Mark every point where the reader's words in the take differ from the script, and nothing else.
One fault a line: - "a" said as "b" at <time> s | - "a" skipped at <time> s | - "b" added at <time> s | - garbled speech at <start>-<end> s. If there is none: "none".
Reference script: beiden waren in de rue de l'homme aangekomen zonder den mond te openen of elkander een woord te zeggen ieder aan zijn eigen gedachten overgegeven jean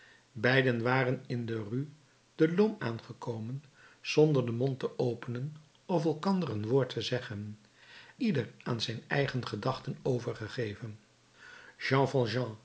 none